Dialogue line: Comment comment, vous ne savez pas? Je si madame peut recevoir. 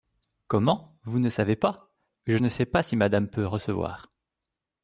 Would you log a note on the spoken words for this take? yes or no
yes